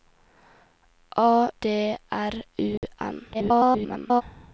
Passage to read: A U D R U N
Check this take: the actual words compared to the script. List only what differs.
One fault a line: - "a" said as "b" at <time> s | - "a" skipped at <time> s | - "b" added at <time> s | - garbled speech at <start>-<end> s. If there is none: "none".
- "U" skipped at 1.5 s
- garbled speech at 3.3-4.2 s